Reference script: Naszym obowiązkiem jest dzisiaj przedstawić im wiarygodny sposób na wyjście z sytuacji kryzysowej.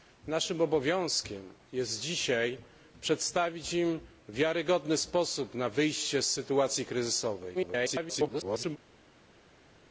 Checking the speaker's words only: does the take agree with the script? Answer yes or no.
no